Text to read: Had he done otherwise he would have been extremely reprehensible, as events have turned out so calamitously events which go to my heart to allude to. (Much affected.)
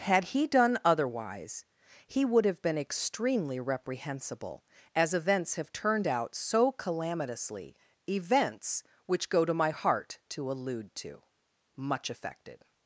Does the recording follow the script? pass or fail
pass